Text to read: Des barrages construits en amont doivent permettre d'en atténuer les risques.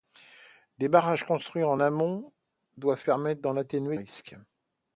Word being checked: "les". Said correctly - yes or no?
no